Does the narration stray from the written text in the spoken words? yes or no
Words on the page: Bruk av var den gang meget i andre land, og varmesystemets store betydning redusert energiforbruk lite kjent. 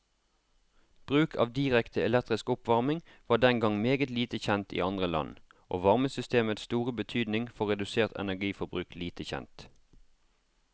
yes